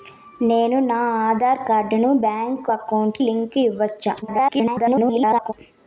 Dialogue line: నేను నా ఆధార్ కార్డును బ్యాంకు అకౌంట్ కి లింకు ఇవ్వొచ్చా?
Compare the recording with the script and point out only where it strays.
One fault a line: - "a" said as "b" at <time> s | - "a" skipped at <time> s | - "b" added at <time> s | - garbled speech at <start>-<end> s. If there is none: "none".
- "కి" skipped at 3.2 s
- garbled speech at 4.2-5.5 s